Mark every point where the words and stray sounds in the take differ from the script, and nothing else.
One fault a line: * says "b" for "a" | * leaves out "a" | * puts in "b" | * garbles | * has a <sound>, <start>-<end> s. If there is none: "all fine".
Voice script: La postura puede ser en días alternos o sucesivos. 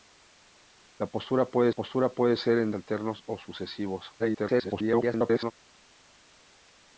* puts in "postura puede"
* leaves out "días"
* garbles